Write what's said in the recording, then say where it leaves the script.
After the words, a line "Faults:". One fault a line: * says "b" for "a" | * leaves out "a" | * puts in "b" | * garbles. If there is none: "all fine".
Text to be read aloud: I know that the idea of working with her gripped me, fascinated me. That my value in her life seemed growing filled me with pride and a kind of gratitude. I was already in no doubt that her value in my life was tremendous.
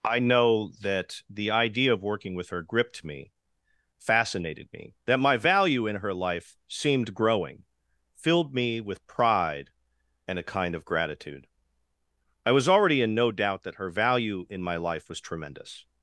I know that the idea of working with her gripped me, fascinated me. That my value in her life seemed growing filled me with pride and a kind of gratitude. I was already in no doubt that her value in my life was tremendous.
Faults:
all fine